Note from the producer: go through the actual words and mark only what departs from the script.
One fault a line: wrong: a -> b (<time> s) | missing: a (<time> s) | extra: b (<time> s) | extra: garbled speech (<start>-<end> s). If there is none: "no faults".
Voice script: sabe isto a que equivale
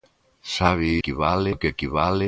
wrong: isto -> equivale (1.0 s)